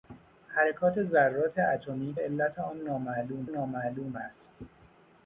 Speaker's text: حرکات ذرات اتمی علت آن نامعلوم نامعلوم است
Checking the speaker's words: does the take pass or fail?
pass